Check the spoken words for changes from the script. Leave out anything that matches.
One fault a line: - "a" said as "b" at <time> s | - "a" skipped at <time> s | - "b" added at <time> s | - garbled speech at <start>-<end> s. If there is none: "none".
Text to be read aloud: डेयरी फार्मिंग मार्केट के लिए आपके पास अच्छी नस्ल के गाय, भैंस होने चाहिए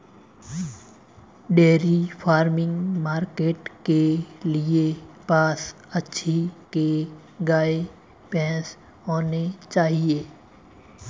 - "आपके" skipped at 4.8 s
- "नस्ल" skipped at 6.3 s